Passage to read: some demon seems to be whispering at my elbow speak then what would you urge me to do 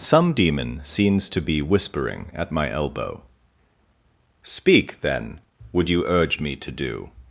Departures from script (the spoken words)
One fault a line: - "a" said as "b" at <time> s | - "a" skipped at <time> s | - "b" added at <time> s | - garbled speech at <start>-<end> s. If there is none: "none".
- "what" skipped at 5.4 s